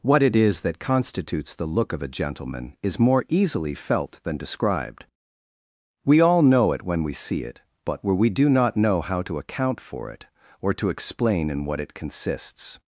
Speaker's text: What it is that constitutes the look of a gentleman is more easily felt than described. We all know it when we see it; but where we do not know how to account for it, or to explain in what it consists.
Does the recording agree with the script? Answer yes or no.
yes